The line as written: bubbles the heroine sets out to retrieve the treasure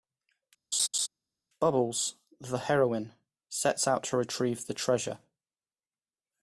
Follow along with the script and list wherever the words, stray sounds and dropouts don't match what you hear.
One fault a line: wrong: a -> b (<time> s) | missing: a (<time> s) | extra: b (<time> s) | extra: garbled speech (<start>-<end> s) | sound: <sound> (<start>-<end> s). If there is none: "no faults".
sound: laugh (0.7-1.1 s)